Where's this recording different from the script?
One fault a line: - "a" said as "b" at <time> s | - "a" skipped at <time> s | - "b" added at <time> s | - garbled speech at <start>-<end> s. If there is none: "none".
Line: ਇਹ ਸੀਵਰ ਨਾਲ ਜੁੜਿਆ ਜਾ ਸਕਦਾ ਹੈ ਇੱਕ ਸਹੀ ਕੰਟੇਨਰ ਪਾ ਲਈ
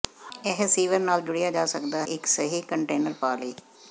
- "ਹੈ" skipped at 2.0 s